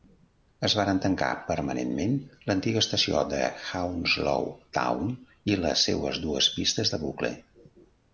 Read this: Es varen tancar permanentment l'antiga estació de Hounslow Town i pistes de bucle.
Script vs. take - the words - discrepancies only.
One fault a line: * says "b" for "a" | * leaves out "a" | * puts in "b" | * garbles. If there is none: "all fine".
* puts in "les seues dues"